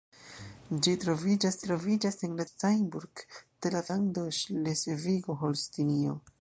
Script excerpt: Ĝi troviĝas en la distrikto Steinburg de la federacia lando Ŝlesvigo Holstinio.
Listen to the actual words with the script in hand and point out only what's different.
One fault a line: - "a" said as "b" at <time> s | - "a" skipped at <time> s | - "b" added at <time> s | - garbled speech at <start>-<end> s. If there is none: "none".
- "troviĝas" added at 1.7 s
- "distrikto" skipped at 2.5 s
- "federacia" skipped at 3.8 s